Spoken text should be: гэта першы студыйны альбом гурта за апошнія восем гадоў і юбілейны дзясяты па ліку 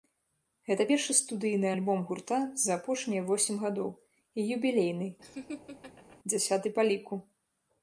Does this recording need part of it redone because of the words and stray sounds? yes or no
yes